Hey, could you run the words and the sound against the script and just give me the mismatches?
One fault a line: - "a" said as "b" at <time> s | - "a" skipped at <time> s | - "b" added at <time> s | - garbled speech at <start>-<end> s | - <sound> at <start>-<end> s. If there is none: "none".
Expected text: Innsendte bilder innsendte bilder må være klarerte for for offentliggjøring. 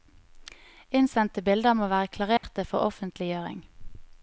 - "innsendte bilder" skipped at 1.8 s
- dropout at 2.4-2.4 s
- "for" skipped at 2.9 s